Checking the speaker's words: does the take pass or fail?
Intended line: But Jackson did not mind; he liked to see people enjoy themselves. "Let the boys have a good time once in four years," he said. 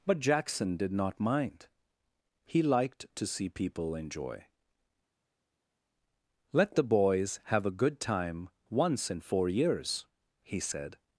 fail